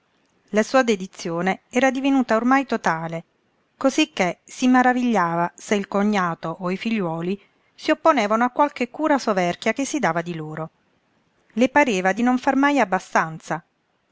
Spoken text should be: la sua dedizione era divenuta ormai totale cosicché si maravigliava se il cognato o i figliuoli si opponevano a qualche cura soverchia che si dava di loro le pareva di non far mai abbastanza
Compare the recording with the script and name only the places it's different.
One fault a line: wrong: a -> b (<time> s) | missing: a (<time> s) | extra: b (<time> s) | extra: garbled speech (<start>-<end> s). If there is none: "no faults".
no faults